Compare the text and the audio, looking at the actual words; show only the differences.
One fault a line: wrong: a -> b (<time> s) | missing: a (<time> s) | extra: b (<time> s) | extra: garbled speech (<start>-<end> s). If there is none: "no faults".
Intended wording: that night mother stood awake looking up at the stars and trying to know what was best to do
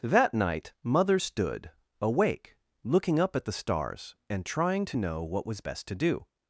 no faults